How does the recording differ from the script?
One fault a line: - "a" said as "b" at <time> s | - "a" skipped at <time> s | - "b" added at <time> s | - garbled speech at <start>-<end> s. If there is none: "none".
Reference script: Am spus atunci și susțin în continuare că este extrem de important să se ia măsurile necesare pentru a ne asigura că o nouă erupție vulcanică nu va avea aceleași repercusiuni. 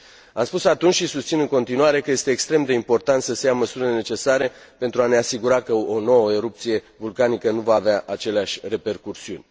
none